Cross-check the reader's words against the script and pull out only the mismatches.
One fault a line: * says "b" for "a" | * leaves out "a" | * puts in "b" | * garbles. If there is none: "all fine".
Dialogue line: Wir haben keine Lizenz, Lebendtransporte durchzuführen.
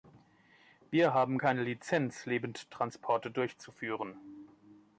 all fine